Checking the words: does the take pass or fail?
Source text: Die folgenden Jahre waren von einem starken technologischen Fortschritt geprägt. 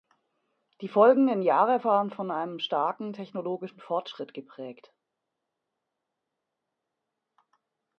pass